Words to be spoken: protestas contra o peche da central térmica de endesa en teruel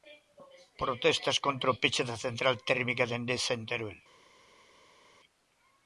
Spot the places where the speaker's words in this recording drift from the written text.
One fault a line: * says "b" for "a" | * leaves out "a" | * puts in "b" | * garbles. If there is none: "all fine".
all fine